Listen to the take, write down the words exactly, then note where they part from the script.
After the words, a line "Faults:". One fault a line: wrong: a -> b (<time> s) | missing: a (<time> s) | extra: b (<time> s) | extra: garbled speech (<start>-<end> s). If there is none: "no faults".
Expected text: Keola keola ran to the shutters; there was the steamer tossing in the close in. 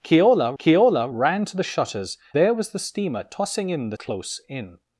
Keola keola ran to the shutters; there was the steamer tossing in the close in.
Faults:
no faults